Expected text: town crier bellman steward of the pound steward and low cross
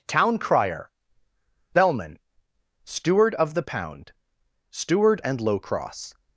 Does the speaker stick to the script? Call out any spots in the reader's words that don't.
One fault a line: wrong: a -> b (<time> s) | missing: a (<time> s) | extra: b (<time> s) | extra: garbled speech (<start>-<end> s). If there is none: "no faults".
no faults